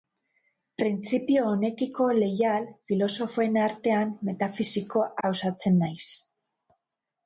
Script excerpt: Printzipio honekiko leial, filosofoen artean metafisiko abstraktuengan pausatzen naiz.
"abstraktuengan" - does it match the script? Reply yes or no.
no